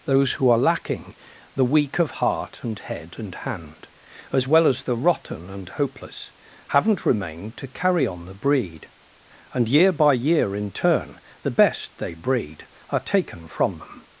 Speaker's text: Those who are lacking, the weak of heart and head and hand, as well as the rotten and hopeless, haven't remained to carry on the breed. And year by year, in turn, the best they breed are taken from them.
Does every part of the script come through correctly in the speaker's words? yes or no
yes